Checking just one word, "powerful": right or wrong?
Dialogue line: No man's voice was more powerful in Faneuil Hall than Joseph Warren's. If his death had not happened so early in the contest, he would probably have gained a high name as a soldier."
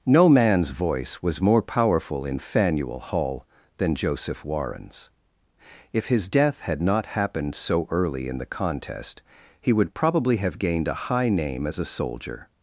right